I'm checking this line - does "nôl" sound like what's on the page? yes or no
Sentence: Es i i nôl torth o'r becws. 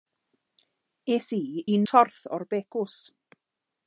no